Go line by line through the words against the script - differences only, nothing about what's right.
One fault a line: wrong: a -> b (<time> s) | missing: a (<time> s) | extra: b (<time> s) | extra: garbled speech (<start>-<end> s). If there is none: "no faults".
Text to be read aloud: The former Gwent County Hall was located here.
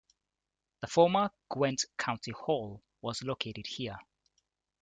no faults